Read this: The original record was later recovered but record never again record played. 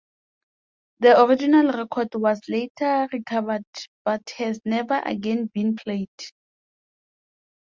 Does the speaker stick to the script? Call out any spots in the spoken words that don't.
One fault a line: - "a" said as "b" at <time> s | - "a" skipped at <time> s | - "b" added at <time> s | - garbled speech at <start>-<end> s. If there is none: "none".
- "record" said as "has" at 4.4 s
- "record" said as "been" at 5.5 s